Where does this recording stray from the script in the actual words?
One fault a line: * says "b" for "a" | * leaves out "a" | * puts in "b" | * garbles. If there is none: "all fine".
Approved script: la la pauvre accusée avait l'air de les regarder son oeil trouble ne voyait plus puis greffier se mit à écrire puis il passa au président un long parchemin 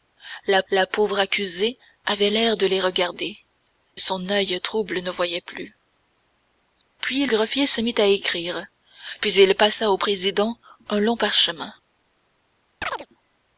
all fine